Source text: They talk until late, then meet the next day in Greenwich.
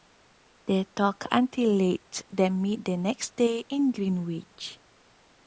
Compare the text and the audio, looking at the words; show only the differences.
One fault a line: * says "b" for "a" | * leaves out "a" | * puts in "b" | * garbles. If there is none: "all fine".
all fine